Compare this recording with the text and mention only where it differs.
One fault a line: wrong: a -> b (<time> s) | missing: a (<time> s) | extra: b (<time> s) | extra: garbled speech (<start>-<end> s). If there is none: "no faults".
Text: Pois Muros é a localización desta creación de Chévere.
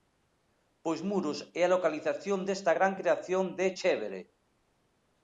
extra: gran (2.8 s)